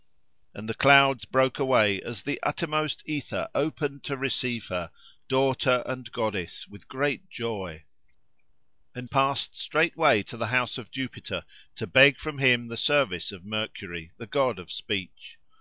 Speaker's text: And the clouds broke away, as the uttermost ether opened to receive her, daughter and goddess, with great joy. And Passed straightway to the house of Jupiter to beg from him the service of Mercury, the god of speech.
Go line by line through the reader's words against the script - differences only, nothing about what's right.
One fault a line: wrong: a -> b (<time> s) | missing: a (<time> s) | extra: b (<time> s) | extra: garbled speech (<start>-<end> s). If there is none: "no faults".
no faults